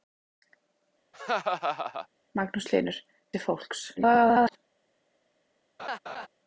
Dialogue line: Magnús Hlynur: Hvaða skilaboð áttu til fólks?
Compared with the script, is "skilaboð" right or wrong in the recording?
wrong